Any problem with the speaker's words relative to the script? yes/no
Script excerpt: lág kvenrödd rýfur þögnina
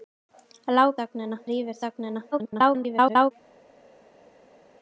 yes